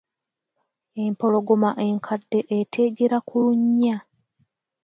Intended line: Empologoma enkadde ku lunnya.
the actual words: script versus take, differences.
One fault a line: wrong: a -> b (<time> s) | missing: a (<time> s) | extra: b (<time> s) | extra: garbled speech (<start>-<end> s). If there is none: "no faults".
extra: eteegera (2.6 s)